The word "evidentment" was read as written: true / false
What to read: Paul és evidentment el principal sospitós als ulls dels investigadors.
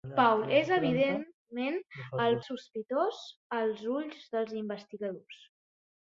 true